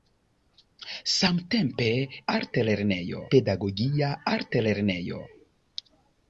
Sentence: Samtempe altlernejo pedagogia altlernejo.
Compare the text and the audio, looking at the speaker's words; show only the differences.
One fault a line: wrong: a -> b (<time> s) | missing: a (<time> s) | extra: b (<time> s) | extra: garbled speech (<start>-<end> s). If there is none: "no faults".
no faults